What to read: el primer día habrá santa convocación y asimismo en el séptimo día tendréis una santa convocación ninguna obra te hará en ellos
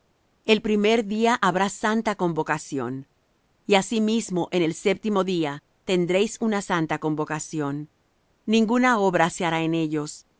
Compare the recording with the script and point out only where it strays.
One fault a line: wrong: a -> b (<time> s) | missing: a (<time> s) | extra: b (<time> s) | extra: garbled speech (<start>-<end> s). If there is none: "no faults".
wrong: te -> se (9.3 s)